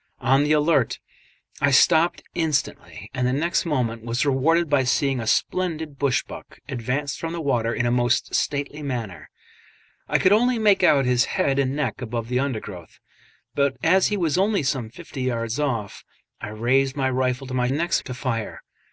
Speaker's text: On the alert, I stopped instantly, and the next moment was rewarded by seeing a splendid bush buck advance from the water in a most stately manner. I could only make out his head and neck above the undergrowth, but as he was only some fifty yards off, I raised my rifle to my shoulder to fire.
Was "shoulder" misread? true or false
true